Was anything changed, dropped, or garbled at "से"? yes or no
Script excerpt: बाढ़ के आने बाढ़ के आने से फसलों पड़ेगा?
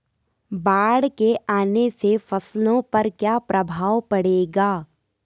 yes